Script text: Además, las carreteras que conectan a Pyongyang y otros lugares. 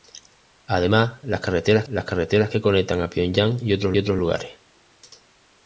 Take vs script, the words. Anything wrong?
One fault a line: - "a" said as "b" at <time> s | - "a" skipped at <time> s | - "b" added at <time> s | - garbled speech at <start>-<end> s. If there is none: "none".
- "las carreteras" added at 1.8 s
- "otros" added at 4.0 s